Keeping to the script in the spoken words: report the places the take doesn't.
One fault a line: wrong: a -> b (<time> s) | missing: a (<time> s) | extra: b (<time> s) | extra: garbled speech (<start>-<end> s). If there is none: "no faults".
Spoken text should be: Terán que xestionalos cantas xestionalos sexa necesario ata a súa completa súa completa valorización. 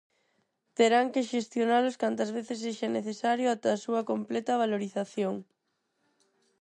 wrong: xestionalos -> veces (2.4 s)
missing: súa completa (4.6 s)